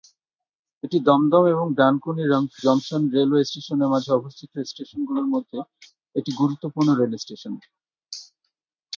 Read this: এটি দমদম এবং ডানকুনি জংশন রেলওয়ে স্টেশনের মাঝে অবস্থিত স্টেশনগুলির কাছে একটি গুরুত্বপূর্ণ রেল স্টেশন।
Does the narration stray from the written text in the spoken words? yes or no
yes